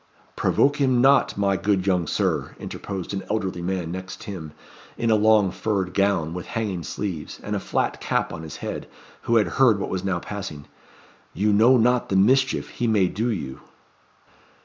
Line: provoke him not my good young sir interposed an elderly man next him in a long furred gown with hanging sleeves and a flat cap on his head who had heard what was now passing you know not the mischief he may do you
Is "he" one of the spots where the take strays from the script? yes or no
no